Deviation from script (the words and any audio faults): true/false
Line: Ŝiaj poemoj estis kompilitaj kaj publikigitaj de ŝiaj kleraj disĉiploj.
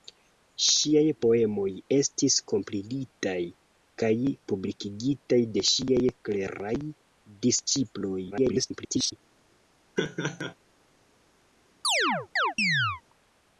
true